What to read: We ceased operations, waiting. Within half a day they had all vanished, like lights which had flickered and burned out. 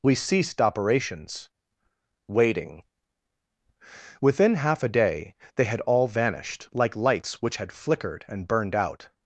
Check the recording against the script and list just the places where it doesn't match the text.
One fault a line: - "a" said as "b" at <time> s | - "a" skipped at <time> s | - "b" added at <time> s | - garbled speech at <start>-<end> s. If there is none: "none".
none